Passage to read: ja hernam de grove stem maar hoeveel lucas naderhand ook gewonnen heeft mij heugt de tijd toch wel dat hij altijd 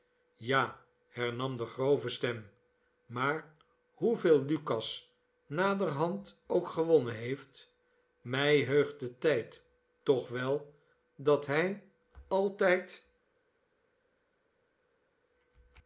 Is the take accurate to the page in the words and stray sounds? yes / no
yes